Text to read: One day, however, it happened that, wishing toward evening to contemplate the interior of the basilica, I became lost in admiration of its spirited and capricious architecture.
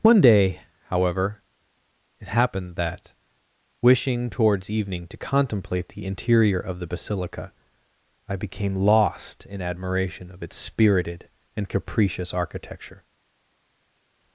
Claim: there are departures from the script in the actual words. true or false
true